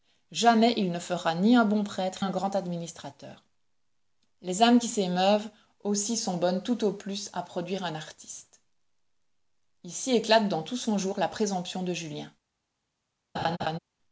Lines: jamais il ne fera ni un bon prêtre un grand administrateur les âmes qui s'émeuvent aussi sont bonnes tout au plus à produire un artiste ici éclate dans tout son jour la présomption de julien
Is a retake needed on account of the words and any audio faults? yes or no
yes